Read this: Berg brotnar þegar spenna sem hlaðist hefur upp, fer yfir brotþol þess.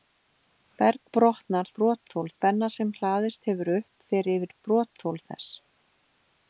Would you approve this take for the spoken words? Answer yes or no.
no